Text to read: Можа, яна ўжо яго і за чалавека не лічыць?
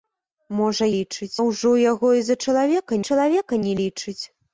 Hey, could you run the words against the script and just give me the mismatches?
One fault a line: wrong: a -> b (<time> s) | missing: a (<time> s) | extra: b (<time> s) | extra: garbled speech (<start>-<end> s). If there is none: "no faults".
wrong: яна -> лічыць (0.9 s)
extra: чалавека (3.1 s)